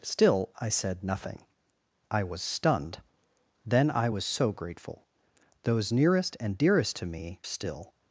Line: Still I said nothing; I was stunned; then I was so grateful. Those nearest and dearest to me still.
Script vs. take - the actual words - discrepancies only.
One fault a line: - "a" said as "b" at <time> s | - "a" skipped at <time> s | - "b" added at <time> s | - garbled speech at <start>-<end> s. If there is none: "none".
none